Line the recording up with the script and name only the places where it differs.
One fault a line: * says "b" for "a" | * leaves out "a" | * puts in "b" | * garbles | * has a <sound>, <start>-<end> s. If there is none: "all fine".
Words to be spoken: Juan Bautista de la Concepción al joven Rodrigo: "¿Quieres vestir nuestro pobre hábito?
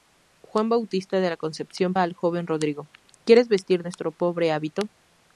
all fine